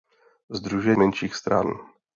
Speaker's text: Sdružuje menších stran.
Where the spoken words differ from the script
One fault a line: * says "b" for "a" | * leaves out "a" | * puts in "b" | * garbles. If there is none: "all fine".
all fine